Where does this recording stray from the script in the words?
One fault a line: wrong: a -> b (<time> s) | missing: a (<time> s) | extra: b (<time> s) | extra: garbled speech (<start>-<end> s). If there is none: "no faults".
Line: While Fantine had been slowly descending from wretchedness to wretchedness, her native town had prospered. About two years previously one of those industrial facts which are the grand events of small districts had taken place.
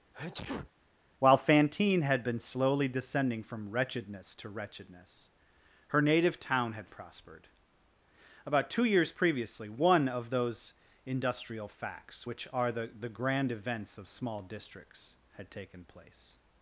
extra: the (13.0 s)